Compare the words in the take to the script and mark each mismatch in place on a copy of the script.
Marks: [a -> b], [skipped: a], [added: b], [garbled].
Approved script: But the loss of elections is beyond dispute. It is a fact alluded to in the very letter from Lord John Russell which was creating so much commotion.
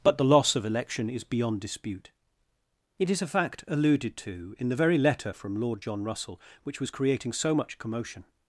But the loss of [elections -> election] is beyond dispute. It is a fact alluded to in the very letter from Lord John Russell which was creating so much commotion.